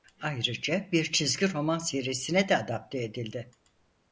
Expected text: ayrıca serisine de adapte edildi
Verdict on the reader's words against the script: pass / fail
fail